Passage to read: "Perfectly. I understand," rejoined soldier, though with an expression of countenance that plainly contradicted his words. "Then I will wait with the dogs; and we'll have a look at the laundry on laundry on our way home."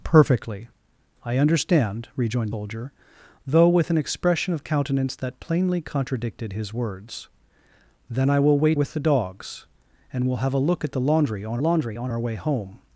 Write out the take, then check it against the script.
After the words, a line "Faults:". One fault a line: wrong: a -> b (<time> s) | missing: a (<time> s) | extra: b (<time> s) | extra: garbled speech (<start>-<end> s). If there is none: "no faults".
"Perfectly. I understand," rejoined soldier, though with an expression of countenance that plainly contradicted his words. "Then I will wait with the dogs; and we'll have a look at the laundry on laundry on our way home."
Faults:
no faults